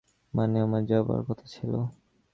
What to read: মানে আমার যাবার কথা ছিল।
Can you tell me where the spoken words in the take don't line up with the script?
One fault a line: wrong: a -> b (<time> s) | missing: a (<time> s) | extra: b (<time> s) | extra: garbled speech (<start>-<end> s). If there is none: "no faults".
no faults